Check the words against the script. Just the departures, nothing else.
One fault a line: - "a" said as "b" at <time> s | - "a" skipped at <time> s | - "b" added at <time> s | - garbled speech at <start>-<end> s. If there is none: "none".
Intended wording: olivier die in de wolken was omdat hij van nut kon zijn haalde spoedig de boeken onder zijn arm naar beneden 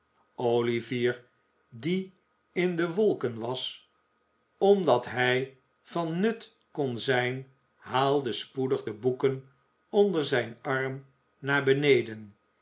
none